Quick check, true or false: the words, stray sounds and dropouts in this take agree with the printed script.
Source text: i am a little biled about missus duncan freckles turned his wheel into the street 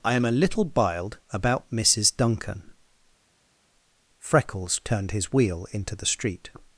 true